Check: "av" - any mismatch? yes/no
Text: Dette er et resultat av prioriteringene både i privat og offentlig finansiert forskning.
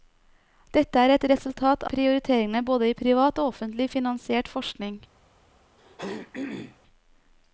yes